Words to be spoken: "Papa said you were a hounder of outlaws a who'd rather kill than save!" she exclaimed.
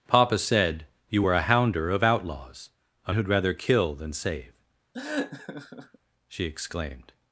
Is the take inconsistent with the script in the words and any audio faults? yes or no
yes